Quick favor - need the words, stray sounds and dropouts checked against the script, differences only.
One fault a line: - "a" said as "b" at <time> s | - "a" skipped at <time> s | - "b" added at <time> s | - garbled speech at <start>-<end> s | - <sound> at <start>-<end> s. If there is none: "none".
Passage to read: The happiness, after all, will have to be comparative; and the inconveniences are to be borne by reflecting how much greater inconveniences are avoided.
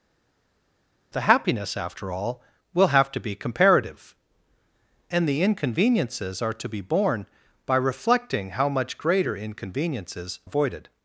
- "are" skipped at 10.4 s